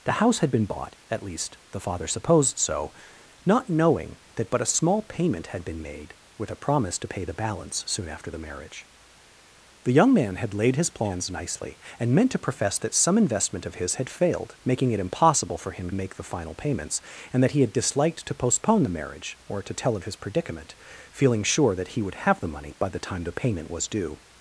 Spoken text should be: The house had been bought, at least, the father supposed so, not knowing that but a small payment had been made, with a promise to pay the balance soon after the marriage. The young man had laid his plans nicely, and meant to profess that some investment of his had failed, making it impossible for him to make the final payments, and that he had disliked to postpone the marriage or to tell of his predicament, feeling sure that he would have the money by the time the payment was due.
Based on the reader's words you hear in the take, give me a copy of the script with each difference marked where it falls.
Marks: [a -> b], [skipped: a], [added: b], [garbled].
The house had been bought, at least, the father supposed so, not knowing that but a small payment had been made, with a promise to pay the balance soon after the marriage. The young man had laid his plans nicely, and meant to profess that some investment of his had failed, making it impossible for him [skipped: to] make the final payments, and that he had disliked to postpone the marriage or to tell of his predicament, feeling sure that he would have the money by the time the payment was due.